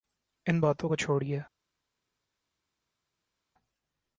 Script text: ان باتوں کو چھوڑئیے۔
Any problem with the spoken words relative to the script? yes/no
no